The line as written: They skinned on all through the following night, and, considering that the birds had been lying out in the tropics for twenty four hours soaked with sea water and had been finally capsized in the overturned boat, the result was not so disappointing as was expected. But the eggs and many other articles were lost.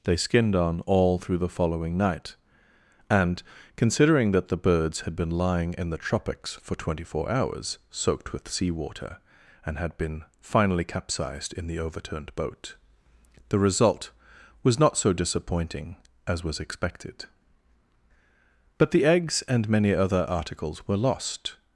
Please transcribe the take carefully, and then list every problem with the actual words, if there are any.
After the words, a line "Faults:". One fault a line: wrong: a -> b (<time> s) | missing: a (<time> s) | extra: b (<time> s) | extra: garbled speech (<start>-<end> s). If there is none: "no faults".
They skinned on all through the following night, and, considering that the birds had been lying in the tropics for twenty four hours soaked with sea water and had been finally capsized in the overturned boat, the result was not so disappointing as was expected. But the eggs and many other articles were lost.
Faults:
missing: out (5.8 s)